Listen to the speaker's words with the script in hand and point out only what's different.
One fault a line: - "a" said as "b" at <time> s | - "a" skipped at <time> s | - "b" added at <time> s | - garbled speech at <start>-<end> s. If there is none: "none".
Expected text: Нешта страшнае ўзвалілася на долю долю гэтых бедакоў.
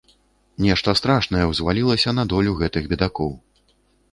- "долю" skipped at 2.6 s